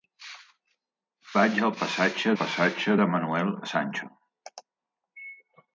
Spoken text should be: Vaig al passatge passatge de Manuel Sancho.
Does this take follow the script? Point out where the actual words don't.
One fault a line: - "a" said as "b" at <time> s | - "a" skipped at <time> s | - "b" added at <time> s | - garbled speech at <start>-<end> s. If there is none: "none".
none